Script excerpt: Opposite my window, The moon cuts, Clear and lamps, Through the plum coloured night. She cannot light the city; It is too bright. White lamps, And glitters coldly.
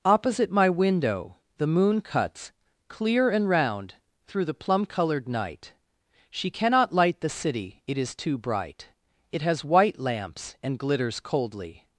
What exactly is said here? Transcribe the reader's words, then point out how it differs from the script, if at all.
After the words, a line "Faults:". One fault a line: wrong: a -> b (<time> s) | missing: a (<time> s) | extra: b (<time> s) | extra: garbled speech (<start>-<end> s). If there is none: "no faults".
Opposite my window, The moon cuts, Clear and round, Through the plum coloured night. She cannot light the city; It is too bright. It has white lamps, And glitters coldly.
Faults:
wrong: lamps -> round (3.5 s)
extra: It has (9.3 s)